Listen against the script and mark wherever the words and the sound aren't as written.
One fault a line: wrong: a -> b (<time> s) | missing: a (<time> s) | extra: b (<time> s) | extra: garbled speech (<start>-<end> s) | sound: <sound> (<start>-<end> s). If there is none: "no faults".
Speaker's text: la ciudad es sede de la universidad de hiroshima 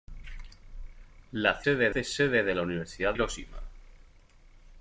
wrong: ciudad -> sede (1.6 s)
missing: de (3.1 s)